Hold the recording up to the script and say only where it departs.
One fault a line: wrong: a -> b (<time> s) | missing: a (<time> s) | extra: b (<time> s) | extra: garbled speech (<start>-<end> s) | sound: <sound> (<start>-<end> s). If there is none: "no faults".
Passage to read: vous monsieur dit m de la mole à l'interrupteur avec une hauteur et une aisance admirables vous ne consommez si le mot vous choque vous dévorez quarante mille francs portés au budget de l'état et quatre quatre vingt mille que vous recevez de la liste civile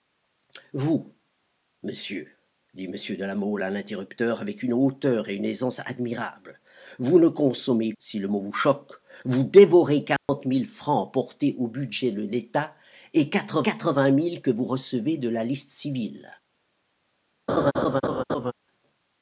sound: dropout (10.2-10.3 s)
sound: laugh (17.5-18.5 s)